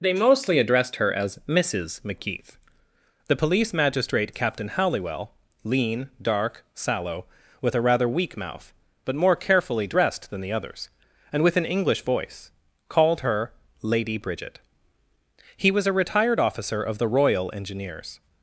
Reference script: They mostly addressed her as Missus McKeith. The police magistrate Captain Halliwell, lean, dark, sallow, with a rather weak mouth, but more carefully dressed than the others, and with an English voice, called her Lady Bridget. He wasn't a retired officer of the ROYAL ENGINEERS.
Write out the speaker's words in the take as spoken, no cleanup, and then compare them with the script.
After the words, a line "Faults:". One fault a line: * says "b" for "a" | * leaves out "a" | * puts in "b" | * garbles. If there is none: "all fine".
They mostly addressed her as Missus McKeith. The police magistrate Captain Halliwell, lean, dark, sallow, with a rather weak mouth, but more carefully dressed than the others, and with an English voice, called her Lady Bridget. He was a retired officer of the ROYAL ENGINEERS.
Faults:
* says "was" for "wasn't"